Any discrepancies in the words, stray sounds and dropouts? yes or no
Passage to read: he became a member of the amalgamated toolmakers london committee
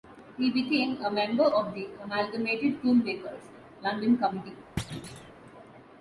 yes